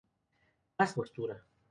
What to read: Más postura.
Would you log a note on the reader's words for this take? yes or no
no